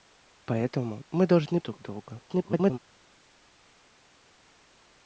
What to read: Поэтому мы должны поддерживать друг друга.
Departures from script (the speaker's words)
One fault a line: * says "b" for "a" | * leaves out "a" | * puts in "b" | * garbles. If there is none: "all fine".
* leaves out "поддерживать"
* garbles